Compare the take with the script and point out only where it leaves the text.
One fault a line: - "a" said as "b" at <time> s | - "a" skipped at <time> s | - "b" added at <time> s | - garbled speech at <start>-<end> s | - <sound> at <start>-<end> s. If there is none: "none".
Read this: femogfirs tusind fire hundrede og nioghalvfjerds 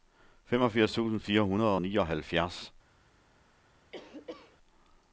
- cough at 3.9-4.6 s